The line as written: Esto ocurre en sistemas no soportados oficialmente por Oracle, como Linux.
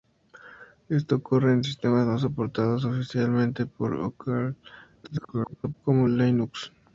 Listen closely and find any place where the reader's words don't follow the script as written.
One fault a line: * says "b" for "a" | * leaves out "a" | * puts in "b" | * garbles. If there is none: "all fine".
* garbles